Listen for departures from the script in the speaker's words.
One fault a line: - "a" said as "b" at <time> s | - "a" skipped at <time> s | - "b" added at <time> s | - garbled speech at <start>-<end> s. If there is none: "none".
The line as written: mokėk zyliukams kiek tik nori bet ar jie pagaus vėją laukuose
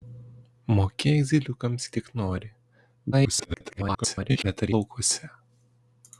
- "kiek" skipped at 1.9 s
- garbled speech at 3.1-4.4 s
- "jie pagaus vėją" skipped at 4.7 s